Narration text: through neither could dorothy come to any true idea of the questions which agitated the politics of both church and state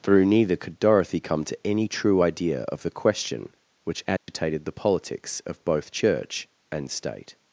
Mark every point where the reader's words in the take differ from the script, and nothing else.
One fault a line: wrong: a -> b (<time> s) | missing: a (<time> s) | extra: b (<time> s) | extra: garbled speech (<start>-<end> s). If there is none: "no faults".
wrong: questions -> question (2.9 s)